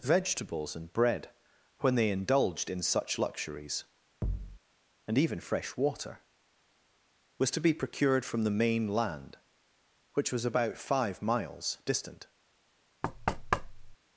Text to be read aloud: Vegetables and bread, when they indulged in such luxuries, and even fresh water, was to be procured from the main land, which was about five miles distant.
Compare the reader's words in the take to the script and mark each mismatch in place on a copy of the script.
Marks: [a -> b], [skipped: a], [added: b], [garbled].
Vegetables and bread, when they indulged in such luxuries, and even fresh water, was to be procured from the main land, which was about five miles distant.